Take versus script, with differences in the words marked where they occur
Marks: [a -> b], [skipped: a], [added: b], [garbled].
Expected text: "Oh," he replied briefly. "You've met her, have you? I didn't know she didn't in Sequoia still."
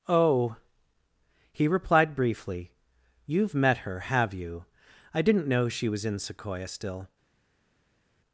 "Oh," he replied briefly. "You've met her, have you? I didn't know she [didn't -> was] in Sequoia still."